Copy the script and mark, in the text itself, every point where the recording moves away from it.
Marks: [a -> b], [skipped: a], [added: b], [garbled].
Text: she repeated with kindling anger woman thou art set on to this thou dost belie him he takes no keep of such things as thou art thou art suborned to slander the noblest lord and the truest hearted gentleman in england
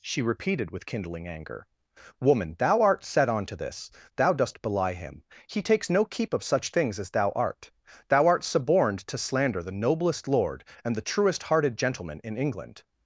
she repeated with kindling anger woman thou art set on to this thou dost belie him he takes no keep of such things as thou art thou art suborned to slander the noblest lord and the truest hearted gentleman in england